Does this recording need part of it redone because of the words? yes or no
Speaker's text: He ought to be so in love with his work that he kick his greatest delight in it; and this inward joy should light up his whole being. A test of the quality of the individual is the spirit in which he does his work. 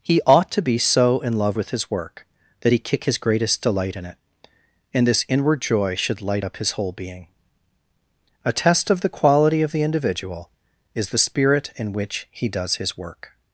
no